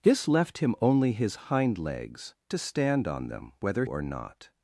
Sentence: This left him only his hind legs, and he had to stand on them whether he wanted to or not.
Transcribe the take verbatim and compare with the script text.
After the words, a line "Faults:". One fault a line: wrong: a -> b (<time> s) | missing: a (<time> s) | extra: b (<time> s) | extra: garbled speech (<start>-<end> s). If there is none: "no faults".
This left him only his hind legs, to stand on them whether or not.
Faults:
missing: and he had (2.3 s)
missing: he wanted to (3.8 s)